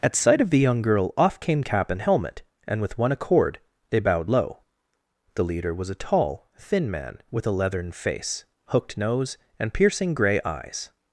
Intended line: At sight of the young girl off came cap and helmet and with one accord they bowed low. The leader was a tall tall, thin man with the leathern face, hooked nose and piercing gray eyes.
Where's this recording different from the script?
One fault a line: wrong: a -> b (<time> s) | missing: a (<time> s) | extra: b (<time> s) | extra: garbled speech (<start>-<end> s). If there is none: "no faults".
missing: tall (6.5 s)
wrong: the -> a (7.4 s)